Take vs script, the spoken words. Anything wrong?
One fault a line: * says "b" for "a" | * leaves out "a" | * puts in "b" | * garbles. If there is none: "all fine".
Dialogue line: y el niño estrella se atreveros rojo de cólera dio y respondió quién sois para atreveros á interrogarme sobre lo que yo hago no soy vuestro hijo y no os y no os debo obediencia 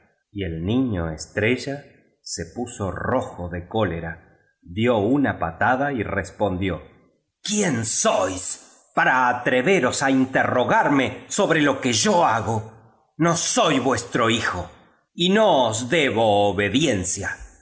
* says "puso" for "atreveros"
* puts in "una patada"
* leaves out "y no os"